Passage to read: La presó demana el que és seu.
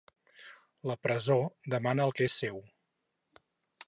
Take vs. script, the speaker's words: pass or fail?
pass